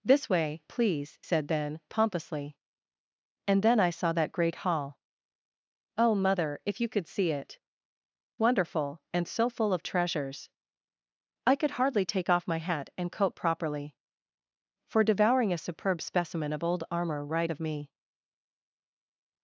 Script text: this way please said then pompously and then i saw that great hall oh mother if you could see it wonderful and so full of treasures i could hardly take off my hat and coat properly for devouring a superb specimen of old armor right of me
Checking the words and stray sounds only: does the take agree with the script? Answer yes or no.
yes